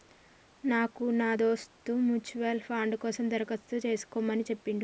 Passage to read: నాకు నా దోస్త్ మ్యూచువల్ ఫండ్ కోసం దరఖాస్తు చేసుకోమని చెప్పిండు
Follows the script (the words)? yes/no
yes